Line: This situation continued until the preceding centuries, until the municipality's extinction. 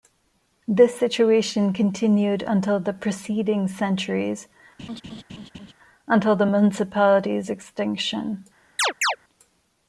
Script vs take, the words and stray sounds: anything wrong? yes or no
yes